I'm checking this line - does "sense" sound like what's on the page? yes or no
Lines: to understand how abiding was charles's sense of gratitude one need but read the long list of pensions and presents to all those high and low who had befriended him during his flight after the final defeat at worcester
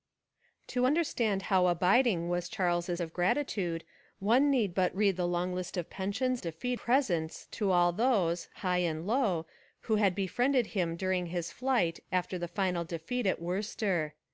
no